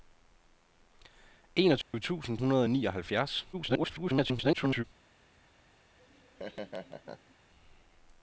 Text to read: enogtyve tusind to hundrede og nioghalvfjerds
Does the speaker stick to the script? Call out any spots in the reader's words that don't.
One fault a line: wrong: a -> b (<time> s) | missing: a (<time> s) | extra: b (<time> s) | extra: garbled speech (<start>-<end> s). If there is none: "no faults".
missing: to (2.4 s)
extra: garbled speech (3.5-4.8 s)